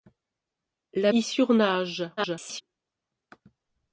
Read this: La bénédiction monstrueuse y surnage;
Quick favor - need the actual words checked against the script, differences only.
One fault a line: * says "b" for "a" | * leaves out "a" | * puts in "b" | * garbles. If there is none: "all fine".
* leaves out "bénédiction monstrueuse"
* garbles